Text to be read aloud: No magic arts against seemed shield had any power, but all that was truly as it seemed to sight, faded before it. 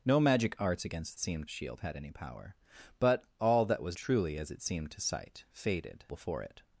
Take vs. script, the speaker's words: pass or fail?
pass